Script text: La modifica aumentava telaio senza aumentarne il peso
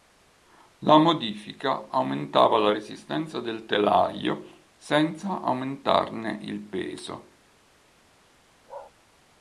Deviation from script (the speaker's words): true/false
true